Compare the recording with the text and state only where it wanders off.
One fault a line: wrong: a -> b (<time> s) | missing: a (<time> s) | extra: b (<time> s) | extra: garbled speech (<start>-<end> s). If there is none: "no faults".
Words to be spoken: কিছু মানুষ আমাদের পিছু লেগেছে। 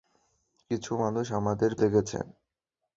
missing: পিছু (1.7 s)